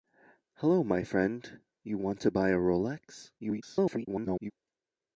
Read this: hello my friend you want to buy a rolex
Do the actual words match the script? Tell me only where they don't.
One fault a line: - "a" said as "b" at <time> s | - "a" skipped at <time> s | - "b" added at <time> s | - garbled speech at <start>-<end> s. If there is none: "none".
- garbled speech at 3.4-4.5 s